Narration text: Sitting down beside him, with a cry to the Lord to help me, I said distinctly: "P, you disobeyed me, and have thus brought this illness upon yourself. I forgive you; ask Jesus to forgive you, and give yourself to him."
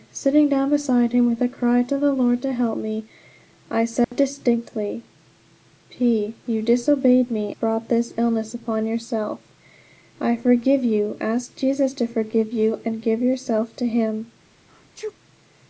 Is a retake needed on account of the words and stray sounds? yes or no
yes